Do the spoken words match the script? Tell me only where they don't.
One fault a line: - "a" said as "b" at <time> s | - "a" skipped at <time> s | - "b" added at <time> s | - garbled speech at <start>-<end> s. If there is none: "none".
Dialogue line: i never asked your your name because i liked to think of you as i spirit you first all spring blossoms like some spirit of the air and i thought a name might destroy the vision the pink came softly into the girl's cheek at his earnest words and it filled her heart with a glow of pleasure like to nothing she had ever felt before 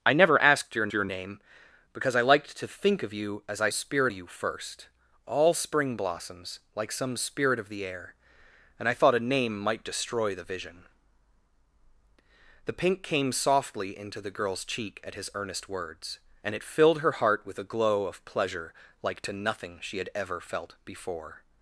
none